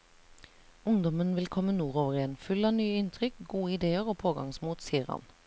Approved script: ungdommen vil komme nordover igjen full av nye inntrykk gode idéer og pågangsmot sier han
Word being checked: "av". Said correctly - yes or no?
yes